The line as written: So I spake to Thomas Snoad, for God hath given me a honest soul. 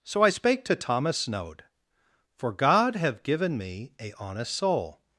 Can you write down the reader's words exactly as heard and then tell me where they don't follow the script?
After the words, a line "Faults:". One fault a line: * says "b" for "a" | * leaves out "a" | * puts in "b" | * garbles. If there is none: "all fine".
So I spake to Thomas Snoad, for God have given me a honest soul.
Faults:
* says "have" for "hath"